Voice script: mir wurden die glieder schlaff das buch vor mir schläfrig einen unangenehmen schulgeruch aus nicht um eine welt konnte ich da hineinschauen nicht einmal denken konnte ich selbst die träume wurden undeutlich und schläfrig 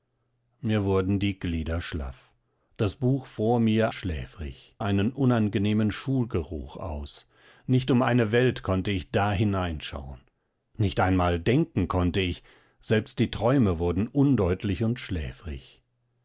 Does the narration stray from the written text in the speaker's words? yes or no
no